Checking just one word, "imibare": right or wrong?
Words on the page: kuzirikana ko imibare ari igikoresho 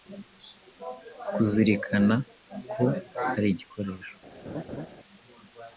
wrong